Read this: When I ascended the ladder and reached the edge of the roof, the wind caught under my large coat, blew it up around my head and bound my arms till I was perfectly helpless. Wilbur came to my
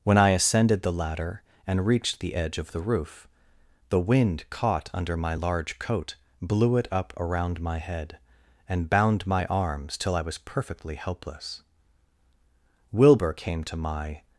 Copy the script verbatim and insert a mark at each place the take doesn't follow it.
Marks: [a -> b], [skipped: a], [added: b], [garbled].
When I ascended the ladder and reached the edge of the roof, the wind caught under my large coat, blew it up around my head and bound my arms till I was perfectly helpless. Wilbur came to my